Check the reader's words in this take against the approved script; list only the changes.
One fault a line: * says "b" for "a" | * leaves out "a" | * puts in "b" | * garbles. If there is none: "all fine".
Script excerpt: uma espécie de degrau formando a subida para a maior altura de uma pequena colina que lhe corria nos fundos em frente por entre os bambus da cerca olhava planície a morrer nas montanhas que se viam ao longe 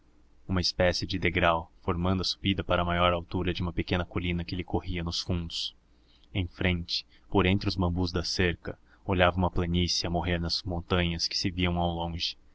* puts in "uma"